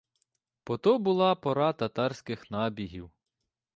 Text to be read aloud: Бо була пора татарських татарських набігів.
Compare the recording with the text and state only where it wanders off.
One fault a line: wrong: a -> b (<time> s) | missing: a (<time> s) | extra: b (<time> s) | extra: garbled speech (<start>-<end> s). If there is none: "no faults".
extra: то (0.8 s)
missing: татарських (2.5 s)